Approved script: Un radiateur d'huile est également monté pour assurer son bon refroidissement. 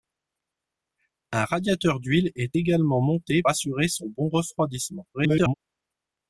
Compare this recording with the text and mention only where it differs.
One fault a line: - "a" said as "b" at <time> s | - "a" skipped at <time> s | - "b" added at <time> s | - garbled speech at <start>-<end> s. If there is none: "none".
- "pour" skipped at 3.4 s
- garbled speech at 5.1-5.5 s